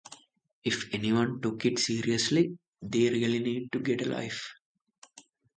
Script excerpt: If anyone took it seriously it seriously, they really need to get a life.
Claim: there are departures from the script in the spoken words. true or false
true